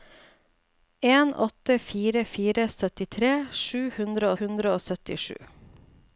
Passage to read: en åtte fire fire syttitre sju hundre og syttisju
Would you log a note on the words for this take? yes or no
yes